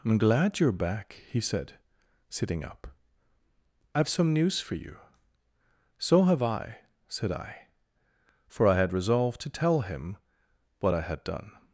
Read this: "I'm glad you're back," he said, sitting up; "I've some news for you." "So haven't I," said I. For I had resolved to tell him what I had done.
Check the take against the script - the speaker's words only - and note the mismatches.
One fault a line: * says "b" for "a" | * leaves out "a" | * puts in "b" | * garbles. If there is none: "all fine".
* says "have" for "haven't"